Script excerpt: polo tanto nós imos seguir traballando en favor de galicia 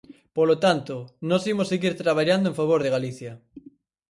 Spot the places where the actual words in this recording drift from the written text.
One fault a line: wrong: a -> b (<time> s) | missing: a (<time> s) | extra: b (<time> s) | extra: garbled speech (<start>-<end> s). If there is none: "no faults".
no faults